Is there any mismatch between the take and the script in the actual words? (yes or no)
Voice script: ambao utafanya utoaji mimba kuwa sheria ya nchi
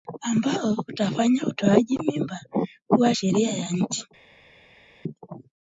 no